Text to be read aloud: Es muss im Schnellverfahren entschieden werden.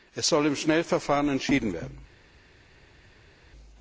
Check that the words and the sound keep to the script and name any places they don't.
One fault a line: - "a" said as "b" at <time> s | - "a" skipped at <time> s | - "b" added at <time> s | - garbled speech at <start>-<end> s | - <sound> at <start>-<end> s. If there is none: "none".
- "muss" said as "soll" at 0.3 s